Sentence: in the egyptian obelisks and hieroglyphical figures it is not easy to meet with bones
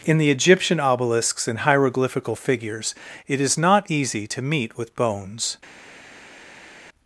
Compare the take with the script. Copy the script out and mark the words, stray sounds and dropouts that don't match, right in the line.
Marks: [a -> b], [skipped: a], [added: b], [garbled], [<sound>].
in the egyptian obelisks and hieroglyphical figures it is not easy to meet with bones